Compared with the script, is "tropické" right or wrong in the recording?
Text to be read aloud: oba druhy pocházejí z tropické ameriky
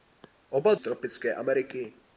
right